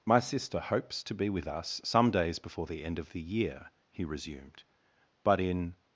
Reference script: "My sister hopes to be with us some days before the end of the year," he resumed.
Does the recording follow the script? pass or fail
fail